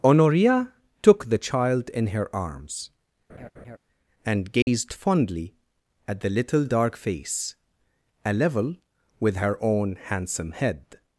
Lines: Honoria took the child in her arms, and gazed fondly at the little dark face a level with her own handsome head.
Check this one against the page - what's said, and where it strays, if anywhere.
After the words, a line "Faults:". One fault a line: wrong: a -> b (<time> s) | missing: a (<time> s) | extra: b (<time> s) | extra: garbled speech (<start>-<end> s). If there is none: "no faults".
Honoria took the child in her arms, and gazed fondly at the little dark face a level with her own handsome head.
Faults:
no faults